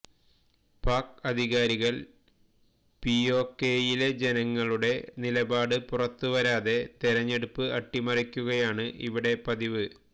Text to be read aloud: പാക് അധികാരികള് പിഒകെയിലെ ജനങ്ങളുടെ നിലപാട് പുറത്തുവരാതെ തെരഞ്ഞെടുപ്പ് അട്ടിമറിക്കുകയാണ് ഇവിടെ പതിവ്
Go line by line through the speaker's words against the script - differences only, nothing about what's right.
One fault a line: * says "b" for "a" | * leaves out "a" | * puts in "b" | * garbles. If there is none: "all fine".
all fine